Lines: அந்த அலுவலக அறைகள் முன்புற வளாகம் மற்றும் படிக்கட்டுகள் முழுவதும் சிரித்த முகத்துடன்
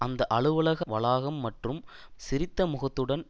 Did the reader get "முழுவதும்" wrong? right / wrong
wrong